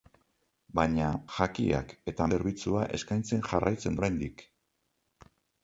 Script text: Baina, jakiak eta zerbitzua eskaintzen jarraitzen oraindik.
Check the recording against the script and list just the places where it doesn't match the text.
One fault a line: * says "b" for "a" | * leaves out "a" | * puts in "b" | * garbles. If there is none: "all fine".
all fine